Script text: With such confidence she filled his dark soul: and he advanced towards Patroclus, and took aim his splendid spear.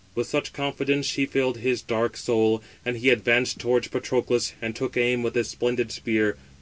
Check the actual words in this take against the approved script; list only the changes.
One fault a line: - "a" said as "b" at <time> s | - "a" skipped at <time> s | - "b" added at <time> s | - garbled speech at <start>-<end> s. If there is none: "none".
- "with" added at 5.2 s